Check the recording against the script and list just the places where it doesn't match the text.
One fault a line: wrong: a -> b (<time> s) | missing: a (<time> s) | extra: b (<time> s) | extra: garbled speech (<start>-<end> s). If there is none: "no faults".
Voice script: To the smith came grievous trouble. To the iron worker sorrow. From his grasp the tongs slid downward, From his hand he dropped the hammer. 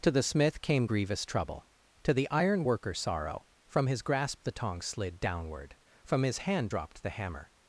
missing: he (6.7 s)